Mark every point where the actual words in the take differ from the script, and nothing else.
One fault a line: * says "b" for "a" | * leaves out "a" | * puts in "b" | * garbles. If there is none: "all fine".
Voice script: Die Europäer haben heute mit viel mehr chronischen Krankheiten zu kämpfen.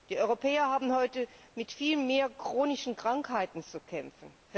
all fine